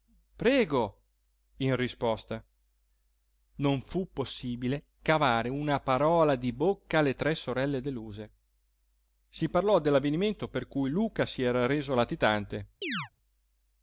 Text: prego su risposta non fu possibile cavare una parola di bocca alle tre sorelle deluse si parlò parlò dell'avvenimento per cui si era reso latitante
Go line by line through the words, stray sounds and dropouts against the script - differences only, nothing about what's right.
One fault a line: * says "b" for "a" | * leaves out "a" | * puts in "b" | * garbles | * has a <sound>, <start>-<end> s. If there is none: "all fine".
* says "in" for "su"
* leaves out "parlò"
* puts in "luca"
* has a chirp, 12.8-13.1 s